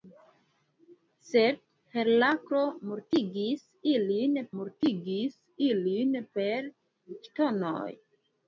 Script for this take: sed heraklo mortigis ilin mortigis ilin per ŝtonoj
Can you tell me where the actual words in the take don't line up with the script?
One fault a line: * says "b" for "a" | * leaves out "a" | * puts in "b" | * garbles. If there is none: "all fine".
all fine